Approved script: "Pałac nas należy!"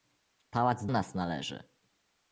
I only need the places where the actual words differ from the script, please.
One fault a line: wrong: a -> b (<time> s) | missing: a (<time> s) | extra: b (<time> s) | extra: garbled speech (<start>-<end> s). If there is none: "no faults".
no faults